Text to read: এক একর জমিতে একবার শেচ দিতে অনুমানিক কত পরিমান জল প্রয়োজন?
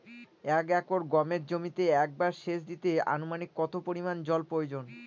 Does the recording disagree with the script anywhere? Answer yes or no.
yes